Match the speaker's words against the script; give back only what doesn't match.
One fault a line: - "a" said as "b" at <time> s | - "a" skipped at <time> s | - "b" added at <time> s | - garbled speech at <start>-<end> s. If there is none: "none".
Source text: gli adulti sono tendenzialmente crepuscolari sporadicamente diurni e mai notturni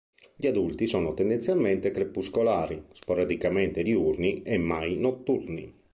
none